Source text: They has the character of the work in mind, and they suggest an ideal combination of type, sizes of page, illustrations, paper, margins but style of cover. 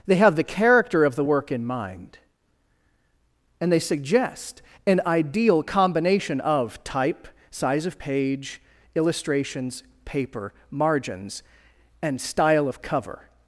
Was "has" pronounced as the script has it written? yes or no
no